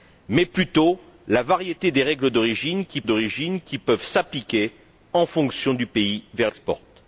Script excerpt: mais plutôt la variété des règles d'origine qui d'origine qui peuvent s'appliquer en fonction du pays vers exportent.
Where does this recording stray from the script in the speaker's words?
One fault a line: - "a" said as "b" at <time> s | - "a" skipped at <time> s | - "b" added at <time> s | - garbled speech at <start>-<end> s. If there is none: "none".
none